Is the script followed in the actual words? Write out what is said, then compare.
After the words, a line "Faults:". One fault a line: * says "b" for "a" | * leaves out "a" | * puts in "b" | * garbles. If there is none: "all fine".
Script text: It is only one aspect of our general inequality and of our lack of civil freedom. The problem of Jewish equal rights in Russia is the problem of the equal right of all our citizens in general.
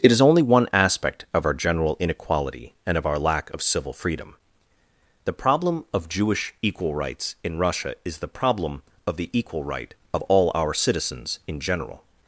It is only one aspect of our general inequality and of our lack of civil freedom. The problem of Jewish equal rights in Russia is the problem of the equal right of all our citizens in general.
Faults:
all fine